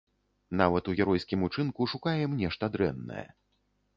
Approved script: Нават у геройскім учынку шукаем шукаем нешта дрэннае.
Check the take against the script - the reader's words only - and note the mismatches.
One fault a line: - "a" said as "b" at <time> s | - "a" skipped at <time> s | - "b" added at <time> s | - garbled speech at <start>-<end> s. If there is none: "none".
- "шукаем" skipped at 2.4 s